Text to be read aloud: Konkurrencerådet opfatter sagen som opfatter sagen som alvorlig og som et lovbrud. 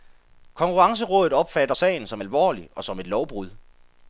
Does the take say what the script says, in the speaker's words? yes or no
no